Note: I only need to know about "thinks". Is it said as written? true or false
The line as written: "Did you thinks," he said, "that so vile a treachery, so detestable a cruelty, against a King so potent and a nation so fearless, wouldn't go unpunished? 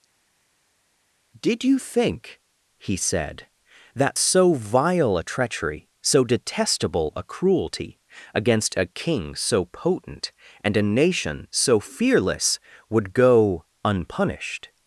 false